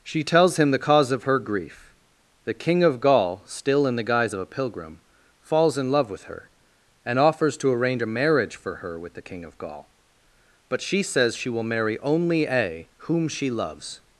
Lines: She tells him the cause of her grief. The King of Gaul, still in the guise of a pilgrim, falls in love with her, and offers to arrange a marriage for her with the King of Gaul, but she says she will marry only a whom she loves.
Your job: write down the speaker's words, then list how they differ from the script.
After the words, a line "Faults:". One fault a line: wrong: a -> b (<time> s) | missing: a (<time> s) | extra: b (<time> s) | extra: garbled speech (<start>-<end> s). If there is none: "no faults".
She tells him the cause of her grief. The King of Gaul, still in the guise of a pilgrim, falls in love with her, and offers to arrange a marriage for her with the King of Gaul, but she says she will marry only a whom she loves.
Faults:
no faults